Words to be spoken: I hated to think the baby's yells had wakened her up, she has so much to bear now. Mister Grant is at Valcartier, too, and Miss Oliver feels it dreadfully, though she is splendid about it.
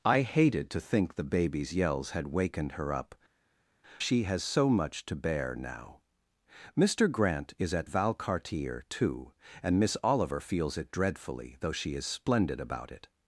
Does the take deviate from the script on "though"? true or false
false